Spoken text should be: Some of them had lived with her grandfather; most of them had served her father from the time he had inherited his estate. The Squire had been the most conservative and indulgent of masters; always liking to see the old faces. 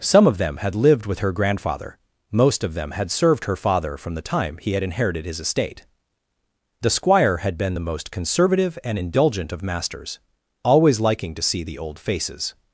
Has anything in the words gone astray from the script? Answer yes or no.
no